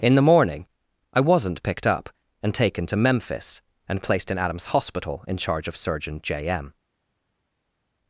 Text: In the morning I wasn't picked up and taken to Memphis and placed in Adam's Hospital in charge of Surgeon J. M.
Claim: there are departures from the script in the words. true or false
false